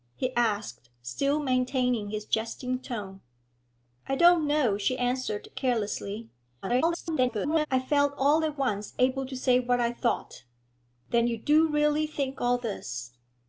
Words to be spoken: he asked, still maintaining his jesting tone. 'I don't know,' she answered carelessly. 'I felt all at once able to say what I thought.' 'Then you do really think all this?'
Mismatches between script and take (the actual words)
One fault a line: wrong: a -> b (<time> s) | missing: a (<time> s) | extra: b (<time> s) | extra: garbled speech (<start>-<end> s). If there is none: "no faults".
extra: garbled speech (6.6-7.7 s)